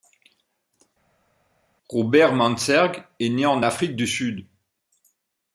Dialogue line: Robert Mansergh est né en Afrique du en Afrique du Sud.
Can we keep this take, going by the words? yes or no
no